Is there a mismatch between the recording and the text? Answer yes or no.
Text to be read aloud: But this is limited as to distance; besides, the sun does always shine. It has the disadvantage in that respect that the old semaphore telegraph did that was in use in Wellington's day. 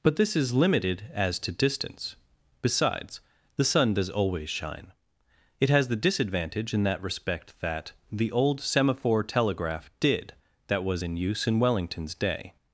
no